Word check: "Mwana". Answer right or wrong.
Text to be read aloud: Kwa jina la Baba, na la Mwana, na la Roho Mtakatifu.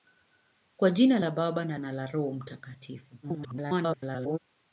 wrong